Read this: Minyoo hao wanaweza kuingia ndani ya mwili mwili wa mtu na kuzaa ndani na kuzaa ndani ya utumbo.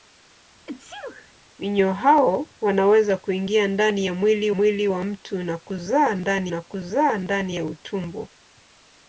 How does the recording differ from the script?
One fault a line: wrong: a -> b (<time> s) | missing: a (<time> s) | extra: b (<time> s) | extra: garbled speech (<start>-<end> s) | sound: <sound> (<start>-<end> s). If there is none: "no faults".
sound: sneeze (0.7-1.3 s)